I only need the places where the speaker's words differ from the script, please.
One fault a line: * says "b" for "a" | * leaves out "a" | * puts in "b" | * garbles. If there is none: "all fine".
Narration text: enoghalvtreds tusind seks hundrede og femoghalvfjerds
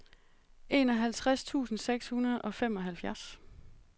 all fine